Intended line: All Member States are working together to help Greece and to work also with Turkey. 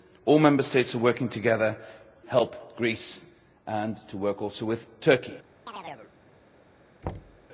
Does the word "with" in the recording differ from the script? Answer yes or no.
no